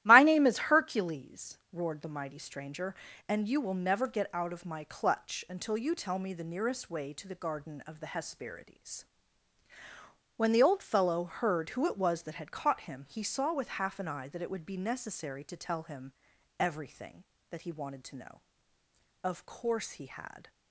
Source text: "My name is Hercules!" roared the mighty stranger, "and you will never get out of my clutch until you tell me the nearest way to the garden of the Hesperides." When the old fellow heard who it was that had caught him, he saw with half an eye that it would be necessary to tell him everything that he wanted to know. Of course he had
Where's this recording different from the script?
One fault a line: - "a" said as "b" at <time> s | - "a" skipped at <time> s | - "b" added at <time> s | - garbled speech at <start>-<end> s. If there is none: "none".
none